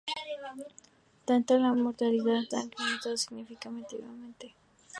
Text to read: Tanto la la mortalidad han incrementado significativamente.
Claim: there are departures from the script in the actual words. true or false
false